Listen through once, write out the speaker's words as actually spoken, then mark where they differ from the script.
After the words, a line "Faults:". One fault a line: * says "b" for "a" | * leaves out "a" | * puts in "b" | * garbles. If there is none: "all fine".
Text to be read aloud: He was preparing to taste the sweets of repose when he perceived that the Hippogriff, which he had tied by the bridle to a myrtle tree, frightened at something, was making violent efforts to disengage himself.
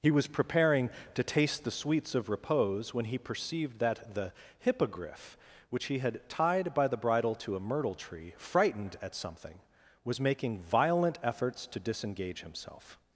He was preparing to taste the sweets of repose when he perceived that the Hippogriff, which he had tied by the bridle to a myrtle tree, frightened at something, was making violent efforts to disengage himself.
Faults:
all fine